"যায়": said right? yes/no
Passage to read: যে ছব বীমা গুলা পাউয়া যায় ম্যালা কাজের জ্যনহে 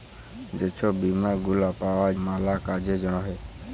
no